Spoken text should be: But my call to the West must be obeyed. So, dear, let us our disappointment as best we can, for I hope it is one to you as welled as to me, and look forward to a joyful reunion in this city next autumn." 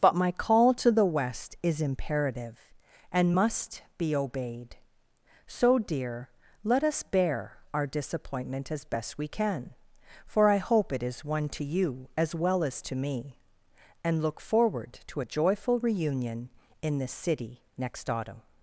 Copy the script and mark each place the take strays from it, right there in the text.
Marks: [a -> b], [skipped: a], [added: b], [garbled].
But my call to the West [added: is imperative and] must be obeyed. So, dear, let us [added: bear] our disappointment as best we can, for I hope it is one to you as [welled -> well] as to me, and look forward to a joyful reunion in this city next autumn."